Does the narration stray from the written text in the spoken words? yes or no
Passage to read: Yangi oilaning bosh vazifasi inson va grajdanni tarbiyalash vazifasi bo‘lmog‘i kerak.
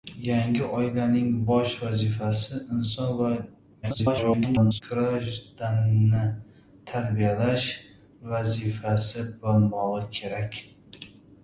yes